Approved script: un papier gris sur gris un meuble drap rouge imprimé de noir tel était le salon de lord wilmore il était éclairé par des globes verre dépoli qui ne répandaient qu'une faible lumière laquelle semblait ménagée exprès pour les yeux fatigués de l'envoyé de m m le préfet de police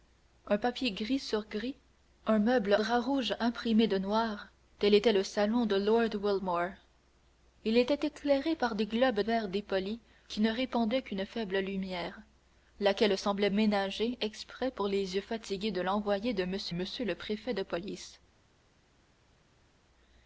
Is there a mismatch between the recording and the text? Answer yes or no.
no